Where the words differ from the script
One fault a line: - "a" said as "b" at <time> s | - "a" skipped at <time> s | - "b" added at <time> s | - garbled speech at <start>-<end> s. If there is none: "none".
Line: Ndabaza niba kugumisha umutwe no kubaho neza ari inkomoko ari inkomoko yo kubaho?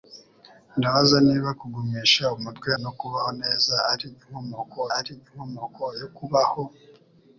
none